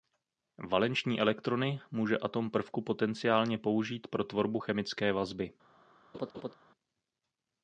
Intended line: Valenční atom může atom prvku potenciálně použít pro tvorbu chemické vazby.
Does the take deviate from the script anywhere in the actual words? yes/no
yes